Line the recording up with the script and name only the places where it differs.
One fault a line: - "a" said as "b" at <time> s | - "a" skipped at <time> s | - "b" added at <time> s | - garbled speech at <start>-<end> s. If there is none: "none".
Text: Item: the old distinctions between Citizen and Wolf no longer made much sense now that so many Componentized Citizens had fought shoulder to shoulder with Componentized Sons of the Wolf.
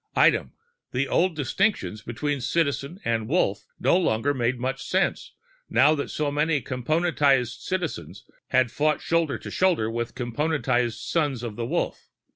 none